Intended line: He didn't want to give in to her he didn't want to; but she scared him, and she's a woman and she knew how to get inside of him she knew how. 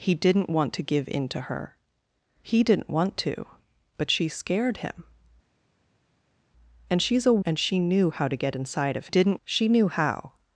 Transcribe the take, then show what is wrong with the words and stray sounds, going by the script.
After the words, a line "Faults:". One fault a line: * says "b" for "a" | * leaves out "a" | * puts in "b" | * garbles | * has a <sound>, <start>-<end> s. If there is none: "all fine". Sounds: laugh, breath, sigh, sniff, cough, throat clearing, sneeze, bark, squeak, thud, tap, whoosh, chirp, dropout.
He didn't want to give in to her he didn't want to; but she scared him, and she's a and she knew how to get inside of didn't she knew how.
Faults:
* leaves out "woman"
* says "didn't" for "him"